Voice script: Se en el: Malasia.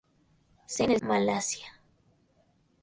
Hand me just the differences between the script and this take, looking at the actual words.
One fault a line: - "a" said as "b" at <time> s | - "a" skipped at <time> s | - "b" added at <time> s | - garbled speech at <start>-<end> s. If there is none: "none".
none